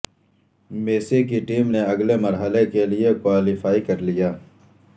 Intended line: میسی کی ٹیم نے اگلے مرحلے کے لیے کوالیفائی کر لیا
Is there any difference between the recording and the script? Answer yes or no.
no